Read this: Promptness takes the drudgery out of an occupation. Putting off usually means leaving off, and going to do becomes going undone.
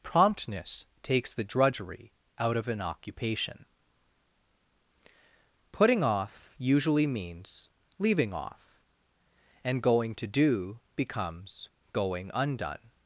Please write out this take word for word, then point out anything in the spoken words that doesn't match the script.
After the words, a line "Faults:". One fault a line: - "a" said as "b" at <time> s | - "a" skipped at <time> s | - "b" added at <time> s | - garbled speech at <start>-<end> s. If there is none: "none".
Promptness takes the drudgery out of an occupation. Putting off usually means leaving off, and going to do becomes going undone.
Faults:
none